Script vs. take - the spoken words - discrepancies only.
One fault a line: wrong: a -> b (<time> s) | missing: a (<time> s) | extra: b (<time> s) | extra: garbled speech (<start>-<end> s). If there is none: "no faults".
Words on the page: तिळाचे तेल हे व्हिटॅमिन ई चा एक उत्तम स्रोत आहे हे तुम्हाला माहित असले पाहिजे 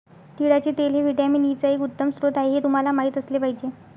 no faults